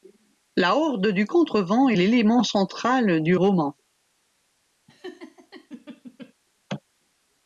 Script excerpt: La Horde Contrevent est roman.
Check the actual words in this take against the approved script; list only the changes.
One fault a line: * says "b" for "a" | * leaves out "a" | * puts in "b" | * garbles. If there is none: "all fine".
* puts in "du"
* puts in "l'élément central du"